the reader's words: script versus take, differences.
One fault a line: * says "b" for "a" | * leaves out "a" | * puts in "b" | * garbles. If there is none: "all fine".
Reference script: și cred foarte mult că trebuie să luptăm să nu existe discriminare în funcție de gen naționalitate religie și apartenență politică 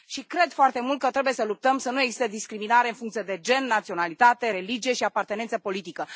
all fine